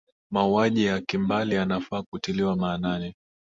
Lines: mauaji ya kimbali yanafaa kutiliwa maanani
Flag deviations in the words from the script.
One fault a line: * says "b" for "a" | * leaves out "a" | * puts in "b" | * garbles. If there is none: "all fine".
all fine